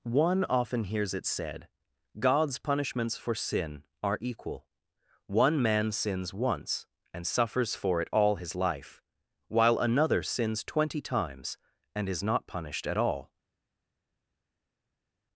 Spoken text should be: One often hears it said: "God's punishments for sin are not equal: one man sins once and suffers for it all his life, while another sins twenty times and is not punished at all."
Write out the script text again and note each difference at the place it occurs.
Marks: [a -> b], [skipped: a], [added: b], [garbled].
One often hears it said: "God's punishments for sin are [skipped: not] equal: one man sins once and suffers for it all his life, while another sins twenty times and is not punished at all."